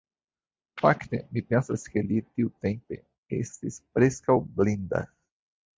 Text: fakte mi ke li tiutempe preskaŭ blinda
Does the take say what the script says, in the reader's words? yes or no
no